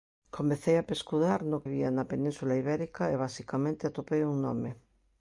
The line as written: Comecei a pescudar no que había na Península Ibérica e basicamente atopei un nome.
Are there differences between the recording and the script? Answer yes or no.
yes